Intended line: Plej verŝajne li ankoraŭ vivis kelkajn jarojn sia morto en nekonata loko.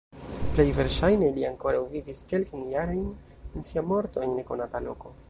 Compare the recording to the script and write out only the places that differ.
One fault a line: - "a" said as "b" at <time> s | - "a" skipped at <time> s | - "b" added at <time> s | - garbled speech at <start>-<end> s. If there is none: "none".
none